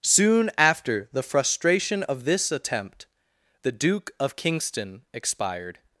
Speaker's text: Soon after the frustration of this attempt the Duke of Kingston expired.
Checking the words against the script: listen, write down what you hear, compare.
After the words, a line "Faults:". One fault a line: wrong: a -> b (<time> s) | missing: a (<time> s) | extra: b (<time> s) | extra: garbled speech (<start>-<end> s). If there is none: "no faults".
Soon after the frustration of this attempt the Duke of Kingston expired.
Faults:
no faults